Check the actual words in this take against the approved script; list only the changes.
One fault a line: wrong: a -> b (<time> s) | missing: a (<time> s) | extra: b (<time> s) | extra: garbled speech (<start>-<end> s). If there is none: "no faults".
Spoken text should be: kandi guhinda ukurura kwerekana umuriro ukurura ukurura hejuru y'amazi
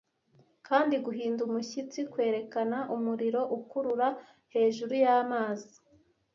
wrong: ukurura -> umushyitsi (1.5 s)
missing: ukurura (4.1 s)